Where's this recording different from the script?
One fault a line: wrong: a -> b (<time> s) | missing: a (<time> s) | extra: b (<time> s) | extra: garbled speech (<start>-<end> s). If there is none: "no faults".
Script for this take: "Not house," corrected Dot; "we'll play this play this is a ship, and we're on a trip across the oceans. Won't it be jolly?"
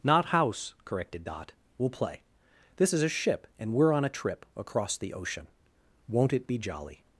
missing: play this (2.9 s)
wrong: oceans -> ocean (5.1 s)